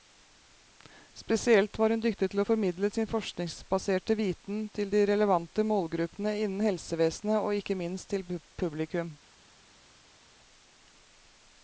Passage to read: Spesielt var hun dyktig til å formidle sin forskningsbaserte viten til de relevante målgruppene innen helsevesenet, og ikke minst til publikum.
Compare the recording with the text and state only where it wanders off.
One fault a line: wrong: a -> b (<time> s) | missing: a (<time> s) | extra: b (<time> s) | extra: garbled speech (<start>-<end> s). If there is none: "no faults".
no faults